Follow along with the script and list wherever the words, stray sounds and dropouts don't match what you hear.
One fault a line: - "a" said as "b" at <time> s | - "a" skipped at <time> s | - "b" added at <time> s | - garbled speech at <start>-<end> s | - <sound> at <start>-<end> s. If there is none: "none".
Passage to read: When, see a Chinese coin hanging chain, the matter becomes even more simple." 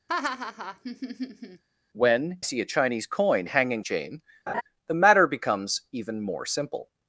- laugh at 0.1-1.6 s
- laugh at 4.5-4.6 s